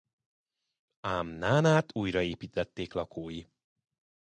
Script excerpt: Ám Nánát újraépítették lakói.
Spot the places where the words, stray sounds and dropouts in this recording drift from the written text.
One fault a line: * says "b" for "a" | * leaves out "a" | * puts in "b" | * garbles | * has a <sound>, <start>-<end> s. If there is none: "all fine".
all fine